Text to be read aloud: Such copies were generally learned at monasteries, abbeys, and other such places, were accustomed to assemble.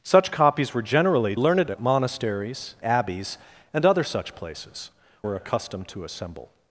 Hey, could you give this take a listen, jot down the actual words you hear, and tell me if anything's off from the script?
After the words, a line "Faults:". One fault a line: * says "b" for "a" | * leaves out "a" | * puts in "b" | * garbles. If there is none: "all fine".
Such copies were generally learned at monasteries, abbeys, and other such places, were accustomed to assemble.
Faults:
all fine